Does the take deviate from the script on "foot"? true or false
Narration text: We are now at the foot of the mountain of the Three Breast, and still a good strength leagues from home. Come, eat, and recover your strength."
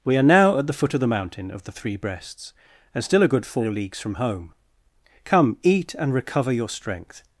false